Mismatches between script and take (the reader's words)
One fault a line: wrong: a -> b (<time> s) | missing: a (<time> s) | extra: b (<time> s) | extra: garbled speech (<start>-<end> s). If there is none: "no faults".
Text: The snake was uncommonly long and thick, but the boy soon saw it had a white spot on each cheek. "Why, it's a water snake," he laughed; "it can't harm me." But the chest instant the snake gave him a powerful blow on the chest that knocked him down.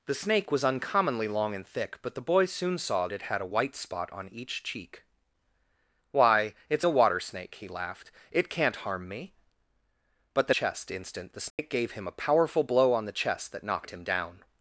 no faults